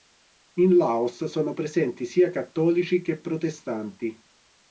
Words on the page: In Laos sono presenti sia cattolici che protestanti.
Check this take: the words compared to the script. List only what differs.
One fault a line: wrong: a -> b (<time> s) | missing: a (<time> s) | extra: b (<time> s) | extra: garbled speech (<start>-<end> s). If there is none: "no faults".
no faults